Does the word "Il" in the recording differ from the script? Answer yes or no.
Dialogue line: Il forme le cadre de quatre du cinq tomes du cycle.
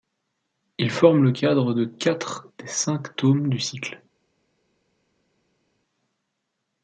no